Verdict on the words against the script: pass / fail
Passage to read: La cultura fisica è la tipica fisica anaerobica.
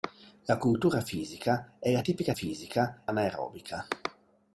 pass